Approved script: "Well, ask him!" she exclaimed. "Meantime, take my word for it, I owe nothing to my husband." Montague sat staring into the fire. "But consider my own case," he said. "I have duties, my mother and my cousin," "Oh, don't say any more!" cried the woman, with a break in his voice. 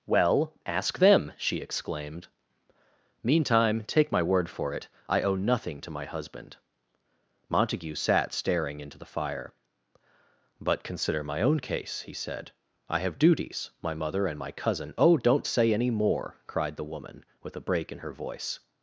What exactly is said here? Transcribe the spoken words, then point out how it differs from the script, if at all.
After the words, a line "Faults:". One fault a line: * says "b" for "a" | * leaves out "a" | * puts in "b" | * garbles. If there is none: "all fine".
"Well, ask them!" she exclaimed. "Meantime, take my word for it, I owe nothing to my husband." Montague sat staring into the fire. "But consider my own case," he said. "I have duties, my mother and my cousin," "Oh, don't say any more!" cried the woman, with a break in her voice.
Faults:
* says "them" for "him"
* says "her" for "his"